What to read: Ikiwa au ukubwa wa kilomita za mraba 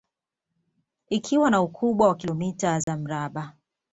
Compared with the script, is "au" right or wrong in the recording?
wrong